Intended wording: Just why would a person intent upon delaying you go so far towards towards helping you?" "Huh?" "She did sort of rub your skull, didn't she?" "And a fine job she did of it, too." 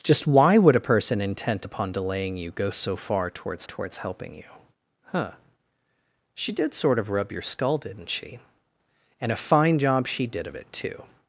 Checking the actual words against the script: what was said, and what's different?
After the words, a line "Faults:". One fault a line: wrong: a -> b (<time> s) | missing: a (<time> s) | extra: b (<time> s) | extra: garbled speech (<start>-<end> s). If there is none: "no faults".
Just why would a person intent upon delaying you go so far towards towards helping you?" "Huh?" "She did sort of rub your skull, didn't she?" "And a fine job she did of it, too."
Faults:
no faults